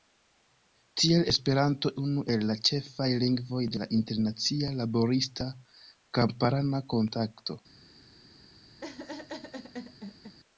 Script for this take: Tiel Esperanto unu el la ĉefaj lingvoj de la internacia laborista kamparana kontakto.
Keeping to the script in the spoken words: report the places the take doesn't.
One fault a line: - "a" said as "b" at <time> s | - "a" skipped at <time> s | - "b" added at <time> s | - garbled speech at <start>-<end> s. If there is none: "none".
none